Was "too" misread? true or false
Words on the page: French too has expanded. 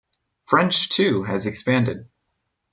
false